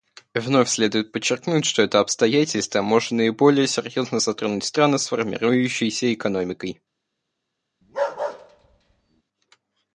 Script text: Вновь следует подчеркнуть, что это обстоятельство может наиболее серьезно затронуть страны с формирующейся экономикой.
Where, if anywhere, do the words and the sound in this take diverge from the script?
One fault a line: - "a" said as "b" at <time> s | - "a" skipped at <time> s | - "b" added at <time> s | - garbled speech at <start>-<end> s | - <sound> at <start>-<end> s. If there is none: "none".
- bark at 7.8-9.2 s